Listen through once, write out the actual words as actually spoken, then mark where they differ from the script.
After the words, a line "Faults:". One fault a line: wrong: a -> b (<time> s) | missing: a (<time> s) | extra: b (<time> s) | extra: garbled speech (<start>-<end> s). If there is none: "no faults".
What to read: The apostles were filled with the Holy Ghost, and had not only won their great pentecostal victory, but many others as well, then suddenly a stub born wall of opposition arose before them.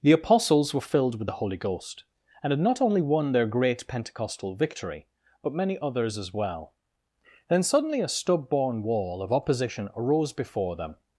The apostles were filled with the Holy Ghost, and had not only won their great pentecostal victory, but many others as well, then suddenly a stub born wall of opposition arose before them.
Faults:
no faults